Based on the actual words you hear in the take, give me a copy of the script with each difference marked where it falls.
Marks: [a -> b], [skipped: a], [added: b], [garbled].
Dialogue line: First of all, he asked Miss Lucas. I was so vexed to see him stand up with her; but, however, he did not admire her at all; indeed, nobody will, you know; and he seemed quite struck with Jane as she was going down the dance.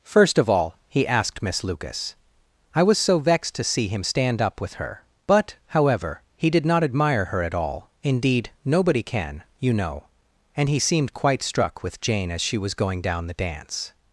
First of all, he asked Miss Lucas. I was so vexed to see him stand up with her; but, however, he did not admire her at all; indeed, nobody [will, -> can] you know; and he seemed quite struck with Jane as she was going down the dance.